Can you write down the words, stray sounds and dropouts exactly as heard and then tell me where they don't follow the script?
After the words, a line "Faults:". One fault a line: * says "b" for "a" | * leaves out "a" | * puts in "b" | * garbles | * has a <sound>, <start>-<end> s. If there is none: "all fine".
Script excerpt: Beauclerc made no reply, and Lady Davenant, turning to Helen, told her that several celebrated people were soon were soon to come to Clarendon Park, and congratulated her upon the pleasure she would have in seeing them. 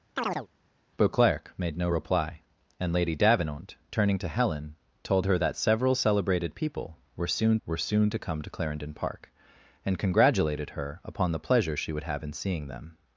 Beauclerc made no reply, and Lady Davenant, turning to Helen, told her that several celebrated people were soon were soon to come to Clarendon Park, and congratulated her upon the pleasure she would have in seeing them.
Faults:
* has a chirp, 0.2-0.5 s